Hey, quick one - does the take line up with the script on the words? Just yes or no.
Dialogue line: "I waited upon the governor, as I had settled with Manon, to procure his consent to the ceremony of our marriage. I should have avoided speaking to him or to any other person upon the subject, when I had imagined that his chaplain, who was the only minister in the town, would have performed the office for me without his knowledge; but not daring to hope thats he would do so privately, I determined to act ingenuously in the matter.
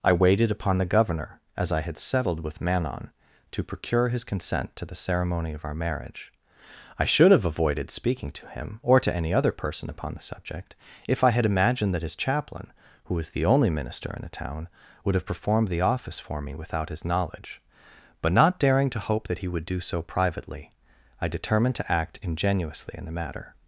no